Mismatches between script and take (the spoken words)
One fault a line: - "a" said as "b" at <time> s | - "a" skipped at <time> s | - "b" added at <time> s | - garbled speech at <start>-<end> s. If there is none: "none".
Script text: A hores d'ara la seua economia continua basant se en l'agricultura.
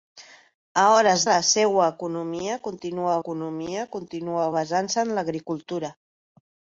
- "d'ara" skipped at 1.2 s
- "economia continua" added at 3.2 s